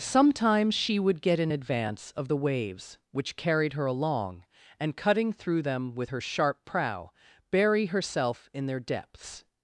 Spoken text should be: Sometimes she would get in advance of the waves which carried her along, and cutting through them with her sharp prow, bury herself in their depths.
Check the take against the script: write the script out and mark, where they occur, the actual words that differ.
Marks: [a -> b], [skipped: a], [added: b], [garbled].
Sometimes she would get in advance of the waves which carried her along, and cutting through them with her sharp prow, bury herself in their depths.